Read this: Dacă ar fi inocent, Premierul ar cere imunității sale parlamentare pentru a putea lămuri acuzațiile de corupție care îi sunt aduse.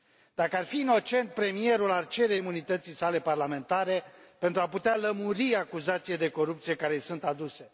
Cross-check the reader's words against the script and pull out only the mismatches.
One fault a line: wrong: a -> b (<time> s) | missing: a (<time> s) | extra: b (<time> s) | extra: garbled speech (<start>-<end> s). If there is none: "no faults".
no faults